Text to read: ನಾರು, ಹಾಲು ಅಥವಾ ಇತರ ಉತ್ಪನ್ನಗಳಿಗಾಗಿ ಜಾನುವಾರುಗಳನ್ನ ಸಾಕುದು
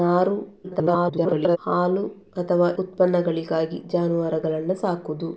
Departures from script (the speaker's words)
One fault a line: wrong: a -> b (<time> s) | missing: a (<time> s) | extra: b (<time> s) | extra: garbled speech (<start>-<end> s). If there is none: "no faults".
extra: garbled speech (0.6-1.6 s)
missing: ಇತರ (2.7 s)